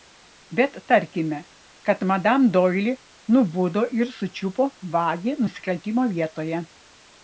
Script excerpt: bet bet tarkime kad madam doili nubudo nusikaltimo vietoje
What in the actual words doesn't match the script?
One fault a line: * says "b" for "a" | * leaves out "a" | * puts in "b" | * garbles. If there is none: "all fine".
* leaves out "bet"
* puts in "ir sučiupo vagį"